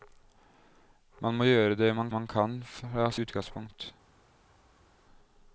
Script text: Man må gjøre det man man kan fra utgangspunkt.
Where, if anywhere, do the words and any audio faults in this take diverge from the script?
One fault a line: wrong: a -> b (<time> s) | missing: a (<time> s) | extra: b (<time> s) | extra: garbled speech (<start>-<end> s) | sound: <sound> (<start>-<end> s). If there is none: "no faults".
no faults